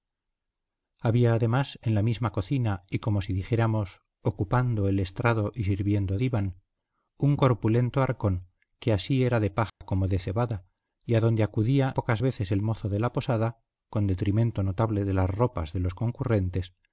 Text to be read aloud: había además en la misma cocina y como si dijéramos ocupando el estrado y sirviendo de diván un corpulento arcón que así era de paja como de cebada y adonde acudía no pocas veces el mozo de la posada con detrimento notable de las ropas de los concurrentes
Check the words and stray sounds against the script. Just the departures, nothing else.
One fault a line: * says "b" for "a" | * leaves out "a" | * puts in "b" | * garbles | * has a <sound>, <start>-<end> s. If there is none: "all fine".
* leaves out "de"
* has a dropout, 9.7-9.8 s
* leaves out "no"